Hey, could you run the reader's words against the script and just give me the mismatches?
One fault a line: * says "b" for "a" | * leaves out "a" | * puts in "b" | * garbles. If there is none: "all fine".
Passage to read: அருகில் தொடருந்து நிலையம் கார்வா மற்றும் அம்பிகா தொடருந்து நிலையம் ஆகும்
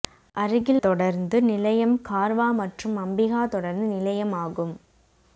all fine